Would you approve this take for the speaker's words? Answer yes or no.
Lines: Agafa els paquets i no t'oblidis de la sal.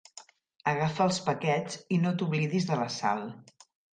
yes